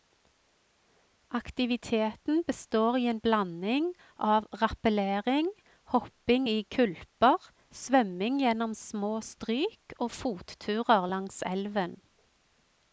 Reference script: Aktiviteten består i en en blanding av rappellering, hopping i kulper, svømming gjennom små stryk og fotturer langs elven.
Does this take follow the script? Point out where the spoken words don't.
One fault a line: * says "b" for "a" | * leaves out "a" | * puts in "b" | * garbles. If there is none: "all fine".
* leaves out "en"